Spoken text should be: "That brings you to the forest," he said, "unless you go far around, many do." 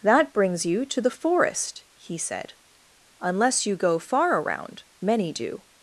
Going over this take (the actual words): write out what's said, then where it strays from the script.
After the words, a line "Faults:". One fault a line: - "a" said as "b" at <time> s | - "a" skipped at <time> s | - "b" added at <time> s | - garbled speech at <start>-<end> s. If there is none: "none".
"That brings you to the forest," he said, "unless you go far around, many do."
Faults:
none